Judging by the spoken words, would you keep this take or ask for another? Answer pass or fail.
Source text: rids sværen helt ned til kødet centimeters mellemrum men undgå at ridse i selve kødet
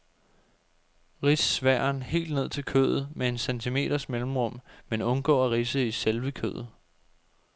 fail